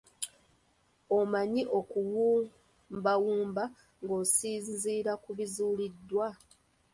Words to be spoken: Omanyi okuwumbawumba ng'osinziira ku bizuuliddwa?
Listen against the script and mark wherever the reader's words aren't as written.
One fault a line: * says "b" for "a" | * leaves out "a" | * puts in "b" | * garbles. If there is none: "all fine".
all fine